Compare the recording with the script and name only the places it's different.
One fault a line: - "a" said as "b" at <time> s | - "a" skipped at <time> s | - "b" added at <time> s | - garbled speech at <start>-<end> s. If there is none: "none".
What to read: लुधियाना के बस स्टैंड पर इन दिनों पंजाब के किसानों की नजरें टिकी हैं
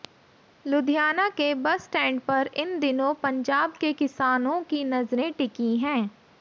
none